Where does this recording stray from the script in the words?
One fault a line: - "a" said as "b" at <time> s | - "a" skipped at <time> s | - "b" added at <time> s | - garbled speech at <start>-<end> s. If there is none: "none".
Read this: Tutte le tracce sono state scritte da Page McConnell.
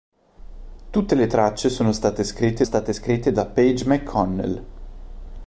- "state scritte" added at 2.6 s